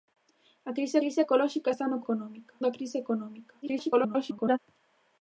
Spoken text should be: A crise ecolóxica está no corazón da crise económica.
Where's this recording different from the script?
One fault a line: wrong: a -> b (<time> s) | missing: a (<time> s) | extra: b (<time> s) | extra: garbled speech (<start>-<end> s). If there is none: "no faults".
extra: crise (1.0 s)
wrong: corazón -> económica (2.0 s)
extra: garbled speech (3.6-4.6 s)